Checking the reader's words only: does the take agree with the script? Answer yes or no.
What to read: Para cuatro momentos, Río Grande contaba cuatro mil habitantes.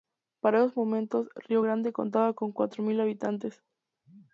no